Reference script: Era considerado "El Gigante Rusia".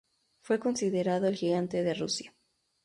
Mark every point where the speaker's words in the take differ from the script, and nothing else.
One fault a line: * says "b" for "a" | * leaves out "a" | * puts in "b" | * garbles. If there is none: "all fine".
* says "Fue" for "Era"
* puts in "de"